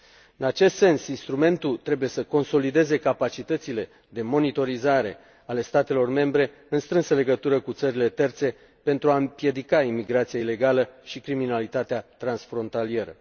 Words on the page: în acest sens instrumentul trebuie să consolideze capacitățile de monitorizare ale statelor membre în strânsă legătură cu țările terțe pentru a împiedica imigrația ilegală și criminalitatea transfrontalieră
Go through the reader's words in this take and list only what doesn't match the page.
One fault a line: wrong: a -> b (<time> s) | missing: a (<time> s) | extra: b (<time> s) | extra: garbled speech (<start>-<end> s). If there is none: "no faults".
no faults